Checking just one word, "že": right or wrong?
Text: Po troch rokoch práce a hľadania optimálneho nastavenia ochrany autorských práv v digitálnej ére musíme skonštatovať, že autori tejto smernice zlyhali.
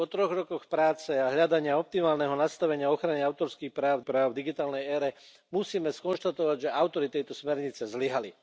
right